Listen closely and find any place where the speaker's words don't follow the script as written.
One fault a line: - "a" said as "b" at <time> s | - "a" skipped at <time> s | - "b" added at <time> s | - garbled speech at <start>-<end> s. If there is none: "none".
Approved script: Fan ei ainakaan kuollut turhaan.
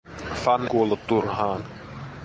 - "ei ainakaan" skipped at 0.7 s